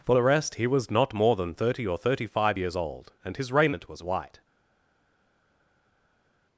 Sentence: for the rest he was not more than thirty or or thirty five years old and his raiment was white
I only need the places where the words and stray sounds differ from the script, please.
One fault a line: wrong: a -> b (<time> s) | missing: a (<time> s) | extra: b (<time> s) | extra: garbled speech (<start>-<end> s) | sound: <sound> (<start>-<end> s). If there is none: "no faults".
missing: or (2.0 s)